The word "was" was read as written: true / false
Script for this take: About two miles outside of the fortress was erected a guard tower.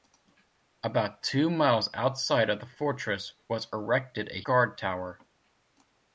true